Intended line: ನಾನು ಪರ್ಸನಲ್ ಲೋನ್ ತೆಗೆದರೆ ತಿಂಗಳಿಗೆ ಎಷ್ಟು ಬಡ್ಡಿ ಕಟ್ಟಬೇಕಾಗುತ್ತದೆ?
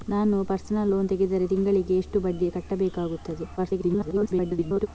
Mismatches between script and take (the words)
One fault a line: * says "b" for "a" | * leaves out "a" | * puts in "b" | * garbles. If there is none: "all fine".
* garbles